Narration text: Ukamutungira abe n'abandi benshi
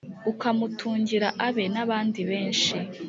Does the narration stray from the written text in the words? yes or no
no